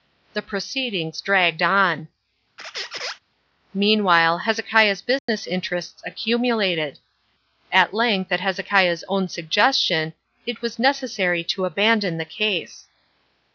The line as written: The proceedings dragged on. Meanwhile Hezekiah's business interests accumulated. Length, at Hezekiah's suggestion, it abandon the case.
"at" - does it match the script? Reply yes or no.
yes